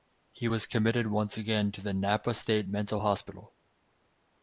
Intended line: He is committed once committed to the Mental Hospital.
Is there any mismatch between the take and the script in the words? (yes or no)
yes